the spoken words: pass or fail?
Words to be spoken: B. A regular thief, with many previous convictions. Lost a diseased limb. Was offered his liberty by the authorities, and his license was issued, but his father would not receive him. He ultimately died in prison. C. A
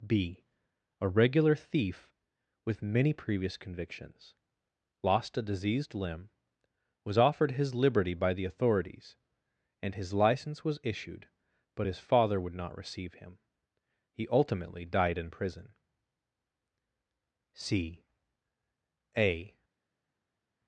pass